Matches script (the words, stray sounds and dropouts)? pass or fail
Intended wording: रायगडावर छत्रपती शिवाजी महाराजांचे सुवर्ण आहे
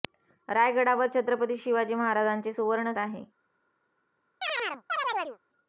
fail